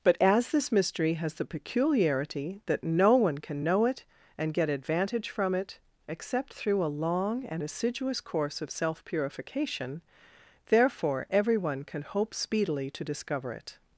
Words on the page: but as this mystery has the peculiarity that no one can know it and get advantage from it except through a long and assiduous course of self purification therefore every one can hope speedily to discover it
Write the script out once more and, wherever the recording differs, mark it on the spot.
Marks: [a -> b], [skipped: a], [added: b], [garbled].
but as this mystery has the peculiarity that no one can know it and get advantage from it except through a long and assiduous course of self purification therefore every one can hope speedily to discover it